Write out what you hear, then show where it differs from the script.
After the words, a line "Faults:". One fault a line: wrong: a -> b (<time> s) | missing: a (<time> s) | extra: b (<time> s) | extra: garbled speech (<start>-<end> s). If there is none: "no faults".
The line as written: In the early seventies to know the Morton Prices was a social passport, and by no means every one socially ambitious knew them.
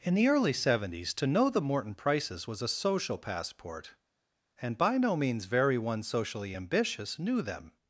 In the early seventies to know the Morton Prices was a social passport, and by no means very one socially ambitious knew them.
Faults:
wrong: every -> very (5.4 s)